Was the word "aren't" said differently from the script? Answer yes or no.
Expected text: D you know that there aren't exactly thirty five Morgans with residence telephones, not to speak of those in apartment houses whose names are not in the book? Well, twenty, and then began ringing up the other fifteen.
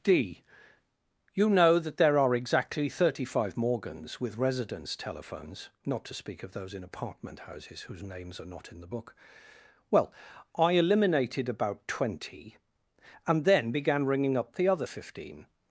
yes